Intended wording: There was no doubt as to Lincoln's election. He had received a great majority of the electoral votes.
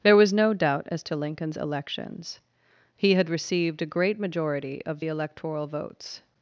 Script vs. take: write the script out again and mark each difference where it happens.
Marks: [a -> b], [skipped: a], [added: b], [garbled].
There was no doubt as to Lincoln's [election. -> elections] He had received a great majority of the electoral votes.